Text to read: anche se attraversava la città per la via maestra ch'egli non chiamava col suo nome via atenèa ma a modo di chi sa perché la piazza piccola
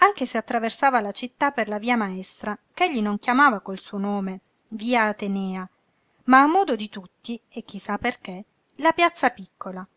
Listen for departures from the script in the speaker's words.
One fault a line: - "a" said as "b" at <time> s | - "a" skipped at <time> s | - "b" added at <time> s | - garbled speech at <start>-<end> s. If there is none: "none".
- "tutti e" added at 6.9 s